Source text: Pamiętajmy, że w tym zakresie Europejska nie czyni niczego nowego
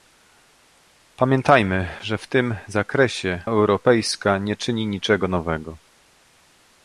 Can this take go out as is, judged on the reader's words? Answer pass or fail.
pass